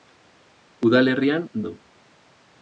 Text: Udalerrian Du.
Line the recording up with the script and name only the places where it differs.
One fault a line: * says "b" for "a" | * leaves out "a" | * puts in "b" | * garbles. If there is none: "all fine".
all fine